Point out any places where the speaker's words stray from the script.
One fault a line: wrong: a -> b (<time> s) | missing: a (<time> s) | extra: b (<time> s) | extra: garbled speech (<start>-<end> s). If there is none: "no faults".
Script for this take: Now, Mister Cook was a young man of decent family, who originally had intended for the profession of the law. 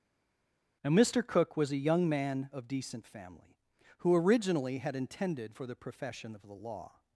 no faults